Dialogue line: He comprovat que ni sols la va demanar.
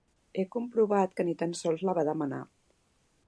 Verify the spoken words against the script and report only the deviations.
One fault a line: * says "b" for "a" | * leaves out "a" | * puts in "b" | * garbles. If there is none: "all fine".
* puts in "tan"